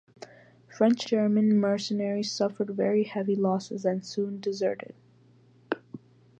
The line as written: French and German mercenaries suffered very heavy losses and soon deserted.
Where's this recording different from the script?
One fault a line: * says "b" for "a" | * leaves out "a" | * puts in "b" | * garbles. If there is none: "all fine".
* leaves out "and"